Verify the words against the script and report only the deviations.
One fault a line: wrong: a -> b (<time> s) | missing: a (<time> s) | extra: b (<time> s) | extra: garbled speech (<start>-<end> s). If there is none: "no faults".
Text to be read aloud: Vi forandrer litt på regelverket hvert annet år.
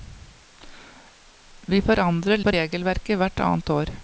missing: litt (2.4 s)